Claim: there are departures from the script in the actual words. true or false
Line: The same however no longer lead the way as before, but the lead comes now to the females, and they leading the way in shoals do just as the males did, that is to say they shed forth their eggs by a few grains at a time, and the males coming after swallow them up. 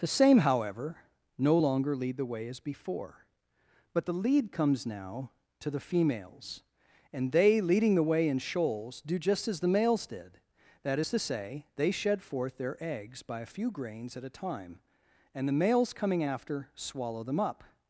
false